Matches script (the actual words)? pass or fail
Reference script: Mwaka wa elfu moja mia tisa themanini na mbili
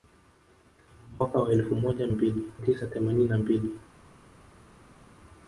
fail